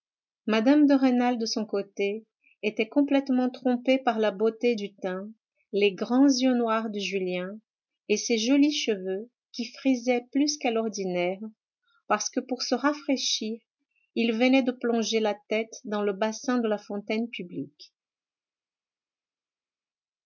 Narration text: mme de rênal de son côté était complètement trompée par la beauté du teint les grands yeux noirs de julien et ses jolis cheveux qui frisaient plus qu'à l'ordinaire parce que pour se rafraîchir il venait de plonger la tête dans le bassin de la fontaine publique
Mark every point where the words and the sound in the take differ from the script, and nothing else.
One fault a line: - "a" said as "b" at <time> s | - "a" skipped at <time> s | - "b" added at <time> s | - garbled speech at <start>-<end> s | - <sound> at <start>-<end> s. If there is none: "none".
none